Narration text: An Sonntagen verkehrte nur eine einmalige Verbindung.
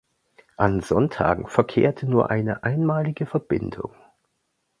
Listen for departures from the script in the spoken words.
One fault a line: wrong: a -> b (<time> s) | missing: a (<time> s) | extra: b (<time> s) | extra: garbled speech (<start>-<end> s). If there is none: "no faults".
no faults